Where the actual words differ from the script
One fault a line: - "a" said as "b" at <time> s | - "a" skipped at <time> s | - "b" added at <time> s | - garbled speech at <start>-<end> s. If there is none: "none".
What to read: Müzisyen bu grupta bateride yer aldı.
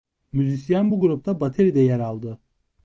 none